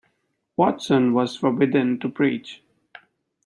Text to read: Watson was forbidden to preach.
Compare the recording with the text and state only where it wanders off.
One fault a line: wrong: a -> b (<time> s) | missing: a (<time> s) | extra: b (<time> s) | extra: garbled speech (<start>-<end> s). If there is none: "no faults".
no faults